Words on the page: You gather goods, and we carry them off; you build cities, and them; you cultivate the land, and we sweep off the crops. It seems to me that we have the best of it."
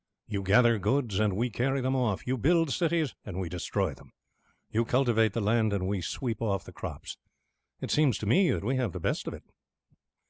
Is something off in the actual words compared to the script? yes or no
yes